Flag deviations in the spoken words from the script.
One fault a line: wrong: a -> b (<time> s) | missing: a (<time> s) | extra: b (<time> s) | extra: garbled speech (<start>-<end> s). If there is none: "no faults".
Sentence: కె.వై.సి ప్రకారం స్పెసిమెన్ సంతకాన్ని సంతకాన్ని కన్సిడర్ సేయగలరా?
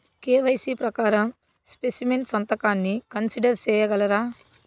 missing: సంతకాన్ని (3.0 s)